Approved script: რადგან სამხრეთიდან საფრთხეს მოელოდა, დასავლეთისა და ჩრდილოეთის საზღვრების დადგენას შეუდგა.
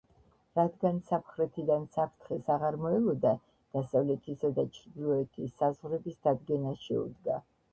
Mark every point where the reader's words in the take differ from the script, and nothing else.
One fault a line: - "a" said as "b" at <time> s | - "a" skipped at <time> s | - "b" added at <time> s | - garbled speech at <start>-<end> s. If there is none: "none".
- "აღარ" added at 2.5 s